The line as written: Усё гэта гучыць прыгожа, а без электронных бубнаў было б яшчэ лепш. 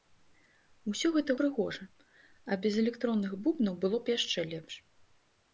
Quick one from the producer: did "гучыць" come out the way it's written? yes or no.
no